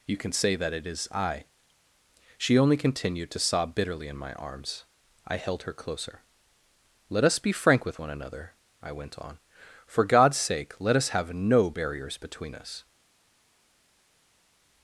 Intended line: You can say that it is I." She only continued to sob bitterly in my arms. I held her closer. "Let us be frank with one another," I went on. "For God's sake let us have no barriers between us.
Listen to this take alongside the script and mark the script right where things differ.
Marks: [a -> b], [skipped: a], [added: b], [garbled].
You can say that it is I." She only continued to sob bitterly in my arms. I held her closer. "Let us be frank with one another," I went on. "For God's sake let us have no barriers between us.